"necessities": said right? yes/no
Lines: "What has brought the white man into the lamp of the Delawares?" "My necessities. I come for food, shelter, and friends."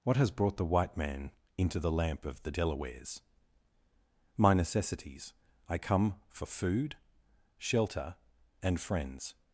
yes